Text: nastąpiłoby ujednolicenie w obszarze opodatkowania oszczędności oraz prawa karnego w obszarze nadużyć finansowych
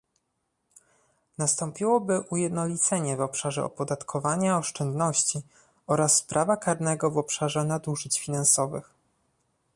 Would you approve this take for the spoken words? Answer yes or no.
yes